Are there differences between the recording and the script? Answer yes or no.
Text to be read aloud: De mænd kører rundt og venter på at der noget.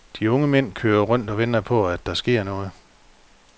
yes